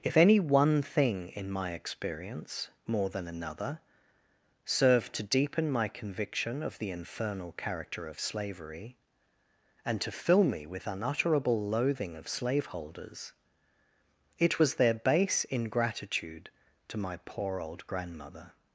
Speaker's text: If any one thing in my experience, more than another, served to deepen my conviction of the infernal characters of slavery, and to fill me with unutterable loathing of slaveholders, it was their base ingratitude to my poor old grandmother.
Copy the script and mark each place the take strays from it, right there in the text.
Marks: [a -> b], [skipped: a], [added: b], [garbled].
If any one thing in my experience, more than another, served to deepen my conviction of the infernal [characters -> character] of slavery, and to fill me with unutterable loathing of slaveholders, it was their base ingratitude to my poor old grandmother.